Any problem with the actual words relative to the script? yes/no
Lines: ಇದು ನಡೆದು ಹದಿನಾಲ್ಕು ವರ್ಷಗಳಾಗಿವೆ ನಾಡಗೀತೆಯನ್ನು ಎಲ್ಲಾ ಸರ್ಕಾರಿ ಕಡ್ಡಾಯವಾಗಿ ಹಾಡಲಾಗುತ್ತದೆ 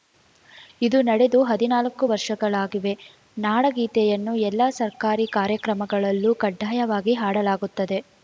yes